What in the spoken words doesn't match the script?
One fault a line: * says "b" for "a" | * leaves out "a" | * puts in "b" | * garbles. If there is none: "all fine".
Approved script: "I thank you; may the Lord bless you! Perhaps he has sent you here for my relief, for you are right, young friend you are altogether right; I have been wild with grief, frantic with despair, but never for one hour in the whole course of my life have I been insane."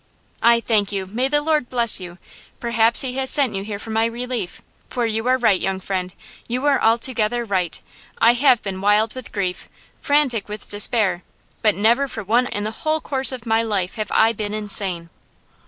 * leaves out "hour"